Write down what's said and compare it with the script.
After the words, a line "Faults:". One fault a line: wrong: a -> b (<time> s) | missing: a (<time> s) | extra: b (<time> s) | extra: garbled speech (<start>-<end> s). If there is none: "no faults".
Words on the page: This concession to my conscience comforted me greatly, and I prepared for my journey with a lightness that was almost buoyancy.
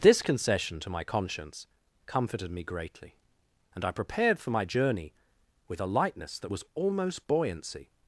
This concession to my conscience comforted me greatly, and I prepared for my journey with a lightness that was almost buoyancy.
Faults:
no faults